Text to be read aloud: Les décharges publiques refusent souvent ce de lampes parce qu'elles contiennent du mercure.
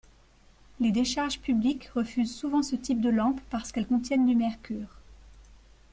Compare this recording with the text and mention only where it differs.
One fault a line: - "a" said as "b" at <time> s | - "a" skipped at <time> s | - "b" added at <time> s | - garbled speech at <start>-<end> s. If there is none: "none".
- "type" added at 2.8 s